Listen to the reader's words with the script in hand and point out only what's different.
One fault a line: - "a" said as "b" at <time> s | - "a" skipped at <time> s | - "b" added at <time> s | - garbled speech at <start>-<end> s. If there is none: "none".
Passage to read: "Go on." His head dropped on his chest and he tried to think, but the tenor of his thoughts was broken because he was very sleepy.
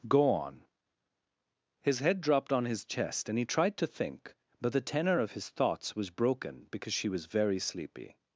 - "he" said as "she" at 6.9 s